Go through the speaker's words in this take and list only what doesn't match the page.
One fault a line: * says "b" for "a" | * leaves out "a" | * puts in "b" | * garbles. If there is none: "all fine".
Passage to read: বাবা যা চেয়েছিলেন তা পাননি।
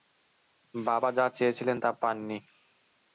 all fine